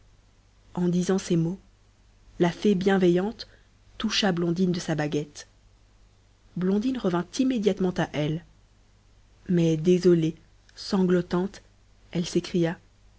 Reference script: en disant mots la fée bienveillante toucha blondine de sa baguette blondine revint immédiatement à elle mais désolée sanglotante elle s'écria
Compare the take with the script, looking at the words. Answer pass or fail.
fail